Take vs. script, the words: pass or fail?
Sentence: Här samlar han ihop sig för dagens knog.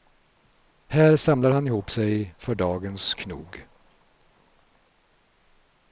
pass